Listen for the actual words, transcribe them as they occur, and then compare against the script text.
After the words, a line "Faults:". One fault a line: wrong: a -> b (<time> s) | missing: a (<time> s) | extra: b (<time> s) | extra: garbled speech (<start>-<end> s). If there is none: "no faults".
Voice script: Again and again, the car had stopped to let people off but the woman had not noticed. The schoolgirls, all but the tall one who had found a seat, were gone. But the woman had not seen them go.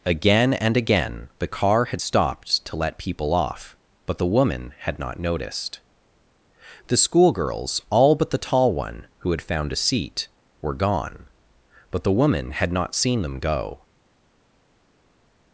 Again and again, the car had stopped to let people off but the woman had not noticed. The schoolgirls, all but the tall one who had found a seat, were gone. But the woman had not seen them go.
Faults:
no faults